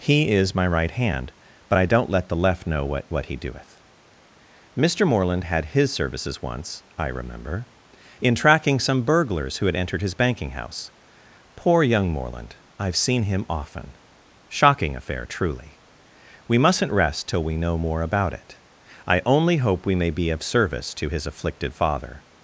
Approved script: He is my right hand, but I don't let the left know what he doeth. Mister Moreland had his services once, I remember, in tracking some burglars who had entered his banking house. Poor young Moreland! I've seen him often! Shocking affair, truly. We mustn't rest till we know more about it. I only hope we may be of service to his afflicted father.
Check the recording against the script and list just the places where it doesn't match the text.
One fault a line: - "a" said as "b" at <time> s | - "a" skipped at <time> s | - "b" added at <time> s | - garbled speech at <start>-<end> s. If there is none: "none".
- "what" added at 3.1 s